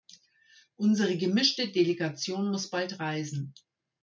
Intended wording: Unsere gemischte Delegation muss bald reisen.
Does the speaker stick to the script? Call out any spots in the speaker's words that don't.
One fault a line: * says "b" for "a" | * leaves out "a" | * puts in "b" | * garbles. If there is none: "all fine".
all fine